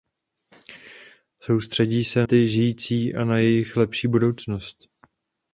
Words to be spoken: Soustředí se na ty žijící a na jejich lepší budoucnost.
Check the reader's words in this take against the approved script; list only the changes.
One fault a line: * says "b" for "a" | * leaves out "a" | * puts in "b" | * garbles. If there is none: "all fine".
* leaves out "na"